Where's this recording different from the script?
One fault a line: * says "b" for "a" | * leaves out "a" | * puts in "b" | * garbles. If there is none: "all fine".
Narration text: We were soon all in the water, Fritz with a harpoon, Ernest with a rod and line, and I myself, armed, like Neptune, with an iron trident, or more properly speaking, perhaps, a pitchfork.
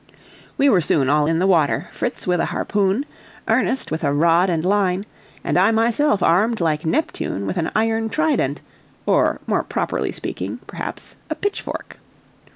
all fine